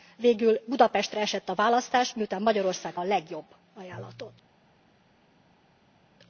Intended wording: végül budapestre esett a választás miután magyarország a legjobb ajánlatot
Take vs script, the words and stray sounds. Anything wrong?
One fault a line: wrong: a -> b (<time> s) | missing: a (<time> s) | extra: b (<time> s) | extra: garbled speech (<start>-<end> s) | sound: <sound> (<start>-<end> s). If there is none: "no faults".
no faults